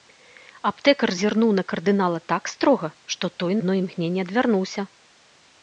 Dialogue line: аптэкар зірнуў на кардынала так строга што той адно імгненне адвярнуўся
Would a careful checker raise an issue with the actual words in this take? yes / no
no